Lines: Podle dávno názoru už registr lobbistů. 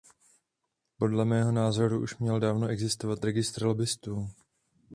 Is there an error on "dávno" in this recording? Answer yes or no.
yes